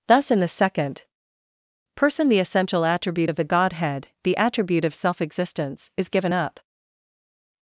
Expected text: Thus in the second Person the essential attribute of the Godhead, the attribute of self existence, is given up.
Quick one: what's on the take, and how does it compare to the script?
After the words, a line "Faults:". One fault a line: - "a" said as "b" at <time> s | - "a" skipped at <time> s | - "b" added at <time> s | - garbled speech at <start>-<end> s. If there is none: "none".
Thus in the second Person the essential attribute of the Godhead, the attribute of self existence, is given up.
Faults:
none